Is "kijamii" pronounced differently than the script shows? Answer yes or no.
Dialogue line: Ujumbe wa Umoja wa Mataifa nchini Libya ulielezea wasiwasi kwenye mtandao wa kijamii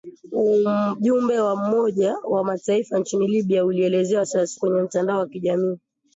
no